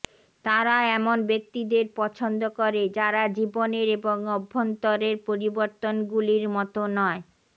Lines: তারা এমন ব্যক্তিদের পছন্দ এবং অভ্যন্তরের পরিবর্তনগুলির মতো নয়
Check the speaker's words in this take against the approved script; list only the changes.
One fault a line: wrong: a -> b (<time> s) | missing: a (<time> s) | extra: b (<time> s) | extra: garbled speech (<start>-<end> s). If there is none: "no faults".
extra: করে যারা জীবনের (2.6 s)